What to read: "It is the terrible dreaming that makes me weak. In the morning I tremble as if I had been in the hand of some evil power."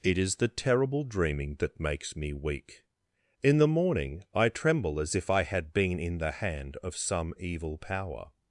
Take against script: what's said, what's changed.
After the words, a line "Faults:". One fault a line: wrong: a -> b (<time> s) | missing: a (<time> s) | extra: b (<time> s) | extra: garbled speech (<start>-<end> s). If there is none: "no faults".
"It is the terrible dreaming that makes me weak. In the morning I tremble as if I had been in the hand of some evil power."
Faults:
no faults